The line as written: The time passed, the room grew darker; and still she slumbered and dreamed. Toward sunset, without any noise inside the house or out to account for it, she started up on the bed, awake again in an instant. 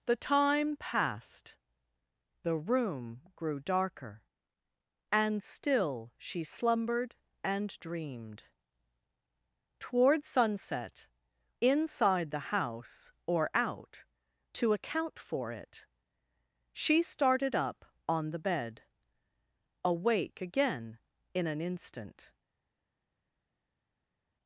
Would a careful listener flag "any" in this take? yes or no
yes